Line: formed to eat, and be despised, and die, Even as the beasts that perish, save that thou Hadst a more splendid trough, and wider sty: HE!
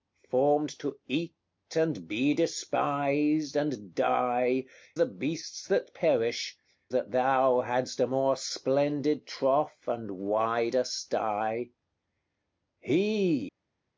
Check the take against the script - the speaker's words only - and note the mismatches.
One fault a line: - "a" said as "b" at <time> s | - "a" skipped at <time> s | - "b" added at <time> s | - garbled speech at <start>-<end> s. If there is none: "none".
- "Even as" skipped at 4.7 s
- "save" skipped at 6.6 s